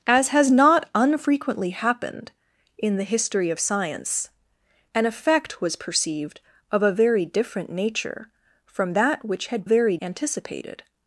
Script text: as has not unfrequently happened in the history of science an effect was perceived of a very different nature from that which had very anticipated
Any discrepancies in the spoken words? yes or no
no